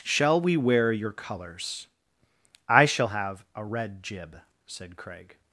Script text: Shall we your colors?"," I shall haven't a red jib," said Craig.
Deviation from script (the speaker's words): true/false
true